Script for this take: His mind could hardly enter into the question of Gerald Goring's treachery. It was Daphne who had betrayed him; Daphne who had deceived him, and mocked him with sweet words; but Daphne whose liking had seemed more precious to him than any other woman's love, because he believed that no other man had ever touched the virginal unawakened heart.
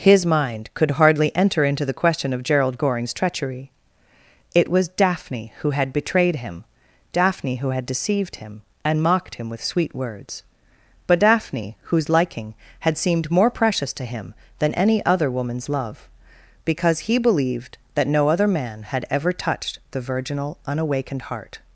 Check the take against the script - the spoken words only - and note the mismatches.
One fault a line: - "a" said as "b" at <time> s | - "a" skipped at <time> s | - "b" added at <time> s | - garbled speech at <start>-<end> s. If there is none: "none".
none